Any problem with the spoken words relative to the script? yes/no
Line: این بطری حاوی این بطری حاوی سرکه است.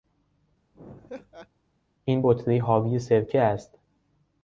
yes